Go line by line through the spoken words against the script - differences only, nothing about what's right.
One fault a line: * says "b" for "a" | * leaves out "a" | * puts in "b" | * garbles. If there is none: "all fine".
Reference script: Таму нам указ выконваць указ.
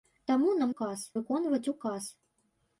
all fine